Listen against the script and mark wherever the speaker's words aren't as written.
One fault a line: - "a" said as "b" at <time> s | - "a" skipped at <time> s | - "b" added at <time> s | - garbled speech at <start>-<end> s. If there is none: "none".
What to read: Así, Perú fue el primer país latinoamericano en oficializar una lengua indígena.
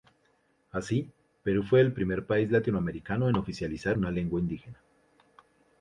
none